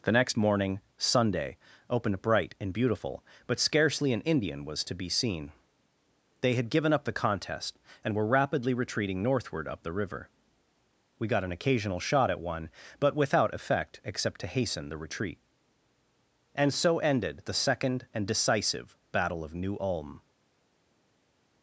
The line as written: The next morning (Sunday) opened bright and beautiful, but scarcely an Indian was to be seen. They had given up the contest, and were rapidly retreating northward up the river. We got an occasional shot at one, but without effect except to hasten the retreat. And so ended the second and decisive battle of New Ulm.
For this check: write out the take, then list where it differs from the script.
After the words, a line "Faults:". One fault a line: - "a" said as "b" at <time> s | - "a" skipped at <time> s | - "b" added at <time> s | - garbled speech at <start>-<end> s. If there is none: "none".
The next morning (Sunday) opened bright and beautiful, but scarcely an Indian was to be seen. They had given up the contest, and were rapidly retreating northward up the river. We got an occasional shot at one, but without effect except to hasten the retreat. And so ended the second and decisive battle of New Ulm.
Faults:
none